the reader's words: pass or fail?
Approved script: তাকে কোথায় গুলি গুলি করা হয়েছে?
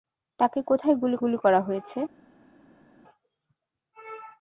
pass